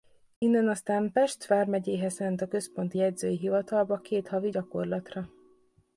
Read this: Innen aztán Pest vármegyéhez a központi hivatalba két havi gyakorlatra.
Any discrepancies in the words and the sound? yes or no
yes